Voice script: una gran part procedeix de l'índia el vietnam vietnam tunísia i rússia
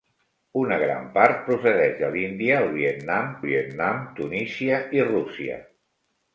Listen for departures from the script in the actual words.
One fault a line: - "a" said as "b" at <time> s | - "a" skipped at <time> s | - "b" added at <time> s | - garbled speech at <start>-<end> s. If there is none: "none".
none